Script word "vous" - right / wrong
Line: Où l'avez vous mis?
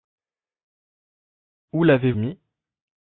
wrong